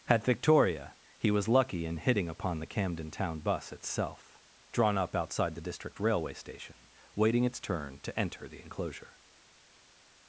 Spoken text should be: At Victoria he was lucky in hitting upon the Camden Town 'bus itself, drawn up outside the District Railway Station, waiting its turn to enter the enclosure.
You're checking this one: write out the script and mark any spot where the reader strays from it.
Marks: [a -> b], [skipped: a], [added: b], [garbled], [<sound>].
At Victoria he was lucky in hitting upon the Camden Town 'bus itself, drawn up outside the District Railway Station, waiting its turn to enter the enclosure.